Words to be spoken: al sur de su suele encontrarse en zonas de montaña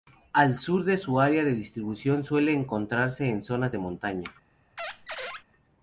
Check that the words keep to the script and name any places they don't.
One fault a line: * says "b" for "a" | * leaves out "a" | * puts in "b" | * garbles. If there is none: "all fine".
* puts in "área de distribución"